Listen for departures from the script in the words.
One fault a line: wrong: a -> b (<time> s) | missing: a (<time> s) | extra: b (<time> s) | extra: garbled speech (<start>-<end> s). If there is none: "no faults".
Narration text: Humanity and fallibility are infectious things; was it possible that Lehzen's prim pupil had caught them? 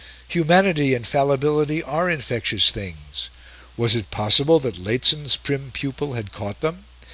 no faults